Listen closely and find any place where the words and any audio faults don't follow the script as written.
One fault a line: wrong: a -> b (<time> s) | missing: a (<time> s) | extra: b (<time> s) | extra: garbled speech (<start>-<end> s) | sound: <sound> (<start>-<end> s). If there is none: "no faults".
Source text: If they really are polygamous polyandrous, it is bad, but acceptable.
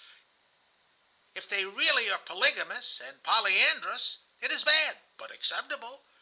extra: and (3.0 s)